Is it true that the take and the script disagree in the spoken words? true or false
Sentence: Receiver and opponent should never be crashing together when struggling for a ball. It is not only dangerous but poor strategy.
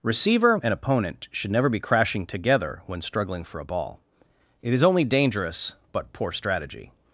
true